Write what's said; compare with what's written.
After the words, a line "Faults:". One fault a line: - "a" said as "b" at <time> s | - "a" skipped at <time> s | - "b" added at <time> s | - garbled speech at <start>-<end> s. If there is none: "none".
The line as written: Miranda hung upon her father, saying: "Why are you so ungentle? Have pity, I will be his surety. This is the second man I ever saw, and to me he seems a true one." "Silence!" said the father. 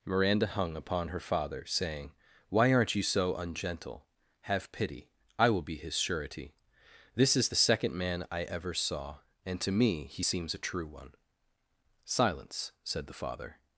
Miranda hung upon her father, saying: "Why aren't you so ungentle? Have pity, I will be his surety. This is the second man I ever saw, and to me he seems a true one." "Silence!" said the father.
Faults:
- "are" said as "aren't" at 2.7 s